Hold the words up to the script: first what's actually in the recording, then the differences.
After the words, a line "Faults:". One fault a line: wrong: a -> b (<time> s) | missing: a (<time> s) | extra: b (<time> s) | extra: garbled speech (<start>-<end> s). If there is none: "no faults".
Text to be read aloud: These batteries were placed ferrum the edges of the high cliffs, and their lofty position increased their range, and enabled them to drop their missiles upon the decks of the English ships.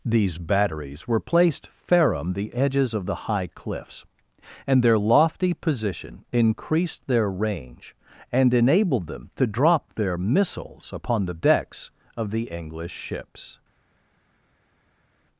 These batteries were placed ferrum the edges of the high cliffs, and their lofty position increased their range, and enabled them to drop their missiles upon the decks of the English ships.
Faults:
no faults